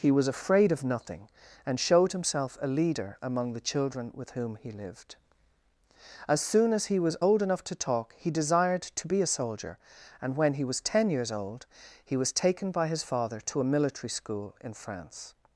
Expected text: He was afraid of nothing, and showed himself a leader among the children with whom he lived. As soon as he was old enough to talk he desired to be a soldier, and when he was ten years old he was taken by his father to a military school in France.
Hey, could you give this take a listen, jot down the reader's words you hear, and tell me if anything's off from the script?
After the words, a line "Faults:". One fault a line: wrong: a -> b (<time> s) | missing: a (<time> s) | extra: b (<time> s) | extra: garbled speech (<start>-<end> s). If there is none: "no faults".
He was afraid of nothing, and showed himself a leader among the children with whom he lived. As soon as he was old enough to talk he desired to be a soldier, and when he was ten years old he was taken by his father to a military school in France.
Faults:
no faults